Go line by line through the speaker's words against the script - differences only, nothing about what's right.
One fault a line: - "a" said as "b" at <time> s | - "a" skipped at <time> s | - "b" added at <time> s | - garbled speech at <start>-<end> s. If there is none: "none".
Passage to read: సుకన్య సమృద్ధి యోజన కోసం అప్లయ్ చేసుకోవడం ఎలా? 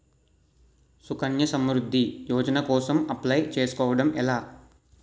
none